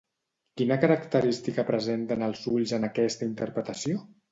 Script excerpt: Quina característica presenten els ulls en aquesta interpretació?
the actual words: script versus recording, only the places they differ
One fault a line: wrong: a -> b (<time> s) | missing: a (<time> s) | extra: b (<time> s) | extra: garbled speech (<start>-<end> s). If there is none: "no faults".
no faults